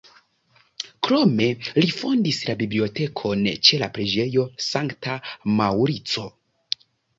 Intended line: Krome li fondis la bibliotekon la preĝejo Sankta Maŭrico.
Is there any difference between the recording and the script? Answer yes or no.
yes